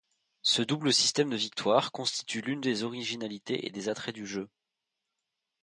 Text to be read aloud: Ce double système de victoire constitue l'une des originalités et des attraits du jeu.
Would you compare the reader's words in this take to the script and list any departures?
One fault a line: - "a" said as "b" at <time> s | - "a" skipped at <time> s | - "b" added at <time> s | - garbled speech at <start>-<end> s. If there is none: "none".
none